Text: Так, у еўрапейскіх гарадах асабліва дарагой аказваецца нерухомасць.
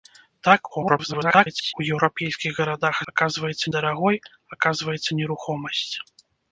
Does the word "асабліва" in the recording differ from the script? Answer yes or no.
yes